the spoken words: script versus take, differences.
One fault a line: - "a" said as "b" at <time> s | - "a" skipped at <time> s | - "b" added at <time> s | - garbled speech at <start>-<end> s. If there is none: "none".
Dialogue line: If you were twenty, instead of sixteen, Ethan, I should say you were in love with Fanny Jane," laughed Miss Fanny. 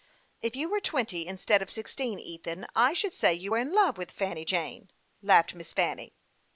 none